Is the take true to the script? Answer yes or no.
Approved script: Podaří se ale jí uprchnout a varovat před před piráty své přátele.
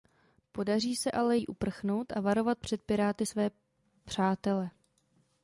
no